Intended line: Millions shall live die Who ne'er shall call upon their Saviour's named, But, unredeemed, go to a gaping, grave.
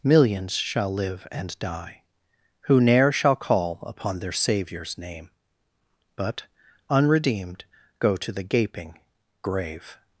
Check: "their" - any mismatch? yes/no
no